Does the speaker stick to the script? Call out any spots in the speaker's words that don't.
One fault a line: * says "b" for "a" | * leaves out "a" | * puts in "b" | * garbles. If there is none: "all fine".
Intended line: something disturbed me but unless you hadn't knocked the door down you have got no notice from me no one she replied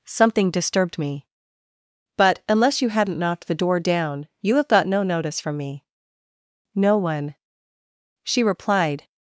all fine